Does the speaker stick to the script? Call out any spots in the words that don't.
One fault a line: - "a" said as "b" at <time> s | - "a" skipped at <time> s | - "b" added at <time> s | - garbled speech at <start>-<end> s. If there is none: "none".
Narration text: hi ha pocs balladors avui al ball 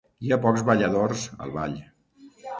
- "avui" skipped at 1.2 s